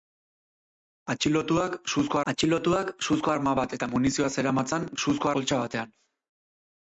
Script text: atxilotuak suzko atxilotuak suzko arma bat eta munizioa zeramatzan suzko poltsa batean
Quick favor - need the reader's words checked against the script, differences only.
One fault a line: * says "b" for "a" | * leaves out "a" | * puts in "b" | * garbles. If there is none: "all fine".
all fine